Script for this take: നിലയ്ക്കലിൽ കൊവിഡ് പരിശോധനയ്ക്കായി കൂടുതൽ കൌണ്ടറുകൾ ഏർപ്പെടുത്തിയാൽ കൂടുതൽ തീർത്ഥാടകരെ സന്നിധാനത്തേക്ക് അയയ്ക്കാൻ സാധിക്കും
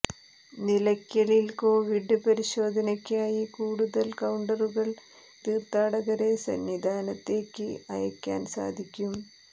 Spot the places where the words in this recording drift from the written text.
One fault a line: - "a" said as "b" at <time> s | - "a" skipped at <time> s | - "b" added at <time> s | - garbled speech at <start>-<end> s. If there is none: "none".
- "ഏർപ്പെടുത്തിയാൽ കൂടുതൽ" skipped at 4.9 s